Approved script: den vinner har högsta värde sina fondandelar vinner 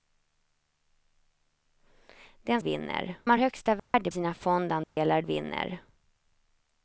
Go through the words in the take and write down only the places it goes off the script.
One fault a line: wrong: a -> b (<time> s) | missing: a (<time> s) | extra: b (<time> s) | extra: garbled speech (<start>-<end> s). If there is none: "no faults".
no faults